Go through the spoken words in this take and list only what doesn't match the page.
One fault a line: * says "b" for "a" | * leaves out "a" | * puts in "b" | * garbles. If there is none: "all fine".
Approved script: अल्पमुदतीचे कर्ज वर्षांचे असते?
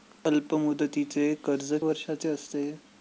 all fine